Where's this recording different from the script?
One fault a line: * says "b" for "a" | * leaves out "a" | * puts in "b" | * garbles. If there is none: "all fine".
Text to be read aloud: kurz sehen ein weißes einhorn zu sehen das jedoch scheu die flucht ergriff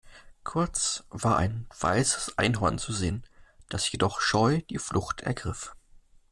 * says "war" for "sehen"